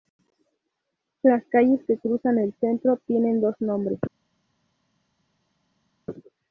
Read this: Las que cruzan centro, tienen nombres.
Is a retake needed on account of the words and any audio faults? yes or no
yes